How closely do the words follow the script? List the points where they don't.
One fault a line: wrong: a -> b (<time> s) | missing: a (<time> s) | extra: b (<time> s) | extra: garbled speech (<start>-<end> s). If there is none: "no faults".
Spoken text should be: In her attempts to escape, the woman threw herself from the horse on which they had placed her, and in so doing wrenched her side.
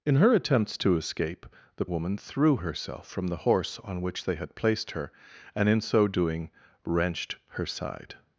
no faults